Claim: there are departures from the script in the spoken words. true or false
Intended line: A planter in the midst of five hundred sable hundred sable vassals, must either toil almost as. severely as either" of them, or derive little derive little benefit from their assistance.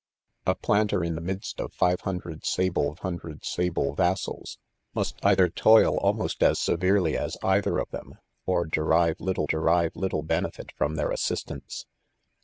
false